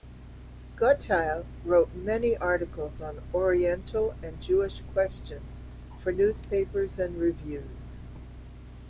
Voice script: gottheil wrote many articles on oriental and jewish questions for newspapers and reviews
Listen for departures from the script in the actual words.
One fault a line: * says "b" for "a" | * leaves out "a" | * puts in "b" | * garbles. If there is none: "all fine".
all fine